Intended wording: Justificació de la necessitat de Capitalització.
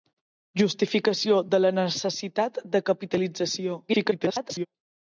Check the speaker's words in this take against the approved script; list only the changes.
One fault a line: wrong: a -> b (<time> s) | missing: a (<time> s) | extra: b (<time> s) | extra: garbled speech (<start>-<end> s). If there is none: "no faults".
extra: garbled speech (3.9-4.7 s)